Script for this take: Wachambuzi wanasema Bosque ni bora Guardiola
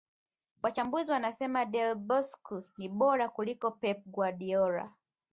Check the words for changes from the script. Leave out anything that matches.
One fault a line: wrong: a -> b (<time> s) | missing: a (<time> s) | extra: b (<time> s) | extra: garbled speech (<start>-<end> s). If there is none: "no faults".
extra: Del (1.6 s)
extra: kuliko Pep (3.3 s)